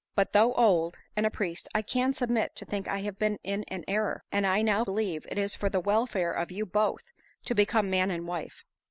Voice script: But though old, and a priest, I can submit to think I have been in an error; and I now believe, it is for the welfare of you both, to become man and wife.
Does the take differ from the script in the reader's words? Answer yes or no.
no